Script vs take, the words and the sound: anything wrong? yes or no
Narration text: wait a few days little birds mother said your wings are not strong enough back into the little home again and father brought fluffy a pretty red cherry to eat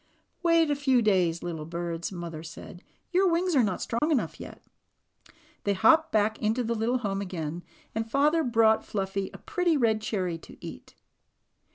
yes